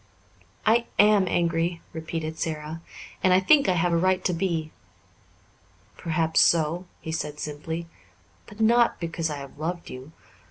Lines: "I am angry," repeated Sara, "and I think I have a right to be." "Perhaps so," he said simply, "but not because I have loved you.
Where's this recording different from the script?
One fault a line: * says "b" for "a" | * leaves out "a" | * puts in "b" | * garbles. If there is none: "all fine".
all fine